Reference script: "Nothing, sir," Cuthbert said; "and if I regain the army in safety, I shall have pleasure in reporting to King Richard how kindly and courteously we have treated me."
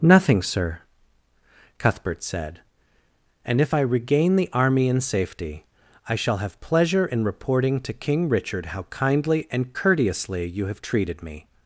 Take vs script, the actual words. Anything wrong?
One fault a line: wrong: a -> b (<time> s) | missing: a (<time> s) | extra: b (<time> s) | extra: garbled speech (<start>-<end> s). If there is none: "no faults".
wrong: we -> you (10.5 s)